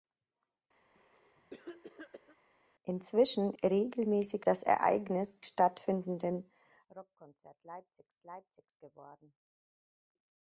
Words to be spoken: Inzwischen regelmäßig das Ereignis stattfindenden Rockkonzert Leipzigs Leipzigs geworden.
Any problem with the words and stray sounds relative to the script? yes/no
yes